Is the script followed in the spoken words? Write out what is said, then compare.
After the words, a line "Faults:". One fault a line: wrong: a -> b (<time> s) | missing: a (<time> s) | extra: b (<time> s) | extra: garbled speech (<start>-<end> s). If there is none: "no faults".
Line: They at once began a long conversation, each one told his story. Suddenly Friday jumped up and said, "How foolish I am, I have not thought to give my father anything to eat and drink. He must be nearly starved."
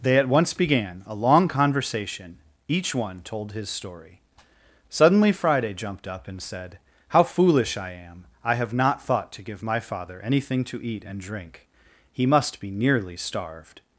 They at once began a long conversation, each one told his story. Suddenly Friday jumped up and said, "How foolish I am, I have not thought to give my father anything to eat and drink. He must be nearly starved."
Faults:
no faults